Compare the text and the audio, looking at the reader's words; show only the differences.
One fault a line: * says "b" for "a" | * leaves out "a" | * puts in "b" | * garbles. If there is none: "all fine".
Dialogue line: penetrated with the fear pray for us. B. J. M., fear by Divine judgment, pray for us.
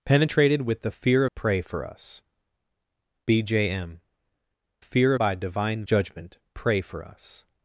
all fine